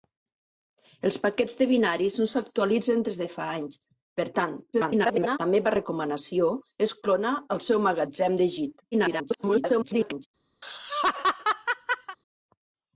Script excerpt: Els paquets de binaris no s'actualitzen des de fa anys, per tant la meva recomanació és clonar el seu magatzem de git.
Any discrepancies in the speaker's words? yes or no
yes